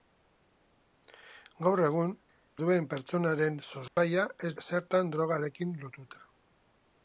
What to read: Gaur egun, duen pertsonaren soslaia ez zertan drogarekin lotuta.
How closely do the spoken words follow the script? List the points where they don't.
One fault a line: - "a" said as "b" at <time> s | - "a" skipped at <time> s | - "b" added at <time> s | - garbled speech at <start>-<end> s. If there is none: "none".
none